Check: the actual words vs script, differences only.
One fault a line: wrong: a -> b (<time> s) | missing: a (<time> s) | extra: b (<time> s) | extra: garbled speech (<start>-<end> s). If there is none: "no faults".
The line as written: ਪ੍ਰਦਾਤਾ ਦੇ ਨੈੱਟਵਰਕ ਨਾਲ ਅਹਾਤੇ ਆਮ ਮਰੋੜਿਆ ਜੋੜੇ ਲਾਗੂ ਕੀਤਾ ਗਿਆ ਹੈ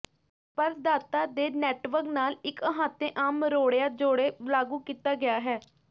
extra: ਇੱਕ (2.5 s)